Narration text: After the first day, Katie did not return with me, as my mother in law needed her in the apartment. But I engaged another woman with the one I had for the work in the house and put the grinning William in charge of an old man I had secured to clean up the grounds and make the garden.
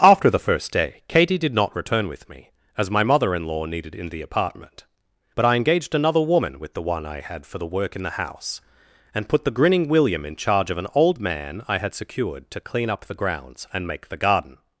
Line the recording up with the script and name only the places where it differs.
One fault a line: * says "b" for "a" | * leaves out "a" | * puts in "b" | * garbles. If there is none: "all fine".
* leaves out "her"